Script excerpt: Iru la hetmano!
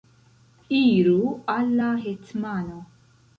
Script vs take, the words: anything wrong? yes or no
yes